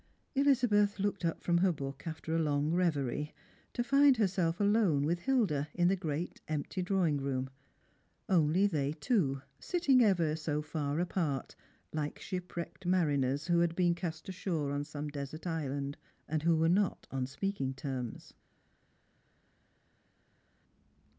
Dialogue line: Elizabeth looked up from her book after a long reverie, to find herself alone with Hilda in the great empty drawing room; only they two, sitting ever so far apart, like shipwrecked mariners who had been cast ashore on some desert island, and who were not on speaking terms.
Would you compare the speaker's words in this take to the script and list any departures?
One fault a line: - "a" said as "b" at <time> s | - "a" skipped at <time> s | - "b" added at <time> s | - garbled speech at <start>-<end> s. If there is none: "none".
none